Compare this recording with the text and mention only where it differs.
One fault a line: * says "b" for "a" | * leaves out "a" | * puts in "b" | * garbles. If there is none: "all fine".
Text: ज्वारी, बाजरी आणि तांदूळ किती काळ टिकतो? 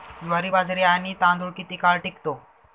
all fine